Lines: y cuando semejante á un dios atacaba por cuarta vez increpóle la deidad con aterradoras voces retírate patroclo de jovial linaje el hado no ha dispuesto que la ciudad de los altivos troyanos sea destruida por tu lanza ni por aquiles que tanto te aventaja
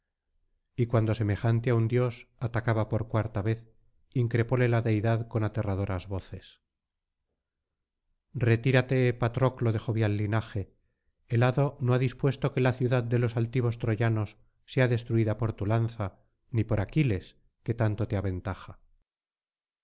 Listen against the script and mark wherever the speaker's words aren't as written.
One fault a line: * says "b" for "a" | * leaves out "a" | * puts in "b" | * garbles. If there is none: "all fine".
all fine